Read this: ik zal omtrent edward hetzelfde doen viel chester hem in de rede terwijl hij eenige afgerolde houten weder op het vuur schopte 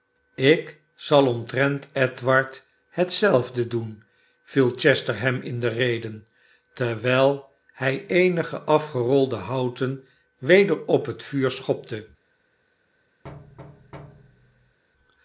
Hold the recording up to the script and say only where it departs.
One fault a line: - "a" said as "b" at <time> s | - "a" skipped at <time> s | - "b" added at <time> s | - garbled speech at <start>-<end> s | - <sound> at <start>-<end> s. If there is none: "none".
- thud at 13.2-14.8 s